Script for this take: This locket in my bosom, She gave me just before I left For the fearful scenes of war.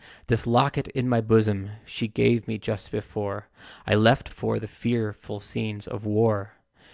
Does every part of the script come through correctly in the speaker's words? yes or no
yes